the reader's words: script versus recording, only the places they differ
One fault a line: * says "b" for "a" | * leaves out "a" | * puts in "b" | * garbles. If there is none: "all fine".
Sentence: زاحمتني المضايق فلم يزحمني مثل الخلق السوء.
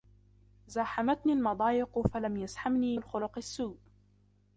* leaves out "مثل"